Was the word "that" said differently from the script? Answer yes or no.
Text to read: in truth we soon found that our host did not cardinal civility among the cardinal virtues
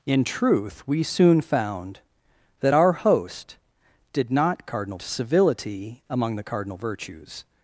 no